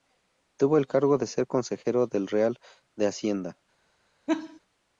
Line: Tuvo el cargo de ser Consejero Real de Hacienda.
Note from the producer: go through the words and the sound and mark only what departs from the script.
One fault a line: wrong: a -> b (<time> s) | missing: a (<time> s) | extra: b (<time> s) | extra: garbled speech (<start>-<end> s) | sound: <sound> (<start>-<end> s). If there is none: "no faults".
extra: del (2.1 s)
sound: laugh (4.3-4.6 s)